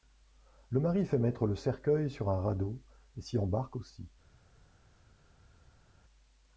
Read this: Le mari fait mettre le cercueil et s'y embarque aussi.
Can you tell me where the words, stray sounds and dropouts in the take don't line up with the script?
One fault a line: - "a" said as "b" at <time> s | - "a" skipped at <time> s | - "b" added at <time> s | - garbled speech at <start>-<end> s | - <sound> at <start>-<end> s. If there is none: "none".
- "sur un radeau" added at 2.1 s